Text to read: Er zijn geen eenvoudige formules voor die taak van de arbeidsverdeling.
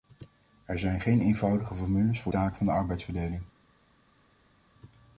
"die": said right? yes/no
no